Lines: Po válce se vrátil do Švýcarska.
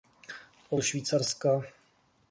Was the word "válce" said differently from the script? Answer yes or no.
yes